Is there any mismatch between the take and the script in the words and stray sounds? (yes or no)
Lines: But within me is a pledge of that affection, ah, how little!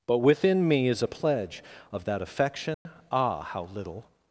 yes